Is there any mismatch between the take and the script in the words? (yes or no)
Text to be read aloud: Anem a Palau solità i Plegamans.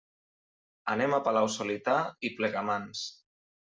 no